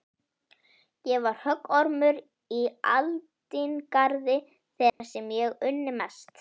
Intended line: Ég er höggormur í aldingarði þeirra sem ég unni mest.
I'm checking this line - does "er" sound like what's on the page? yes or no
no